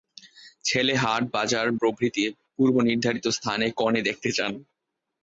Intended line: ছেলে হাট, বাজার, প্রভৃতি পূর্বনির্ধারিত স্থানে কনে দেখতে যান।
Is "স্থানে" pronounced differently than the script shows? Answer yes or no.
no